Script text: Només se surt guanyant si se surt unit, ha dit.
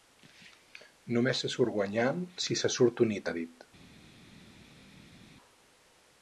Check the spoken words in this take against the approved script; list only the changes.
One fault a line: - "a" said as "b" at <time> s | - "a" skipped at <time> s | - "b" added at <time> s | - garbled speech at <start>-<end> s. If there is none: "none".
none